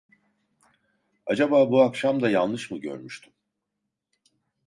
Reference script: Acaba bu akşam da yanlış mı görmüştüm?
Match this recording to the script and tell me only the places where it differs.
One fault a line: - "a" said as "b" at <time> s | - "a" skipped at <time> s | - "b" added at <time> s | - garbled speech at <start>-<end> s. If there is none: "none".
none